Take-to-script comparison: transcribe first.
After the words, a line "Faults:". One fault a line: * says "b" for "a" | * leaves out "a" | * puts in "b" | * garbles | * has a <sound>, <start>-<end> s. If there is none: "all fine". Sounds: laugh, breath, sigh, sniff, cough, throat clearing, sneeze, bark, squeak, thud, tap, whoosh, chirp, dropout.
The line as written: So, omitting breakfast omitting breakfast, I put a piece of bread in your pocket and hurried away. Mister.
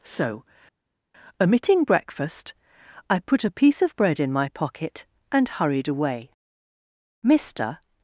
So, omitting breakfast, I put a piece of bread in my pocket and hurried away. Mister.
Faults:
* leaves out "omitting breakfast"
* says "my" for "your"